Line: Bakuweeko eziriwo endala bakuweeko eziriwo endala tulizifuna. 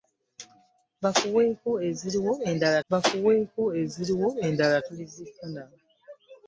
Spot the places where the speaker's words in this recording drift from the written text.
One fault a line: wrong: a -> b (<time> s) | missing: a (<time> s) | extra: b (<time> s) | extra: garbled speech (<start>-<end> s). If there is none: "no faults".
no faults